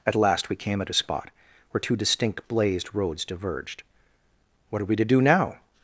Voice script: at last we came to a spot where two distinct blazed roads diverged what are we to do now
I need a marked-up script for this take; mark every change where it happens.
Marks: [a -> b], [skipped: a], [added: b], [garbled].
at last we came [to -> at] a spot where two distinct blazed roads diverged what are we to do now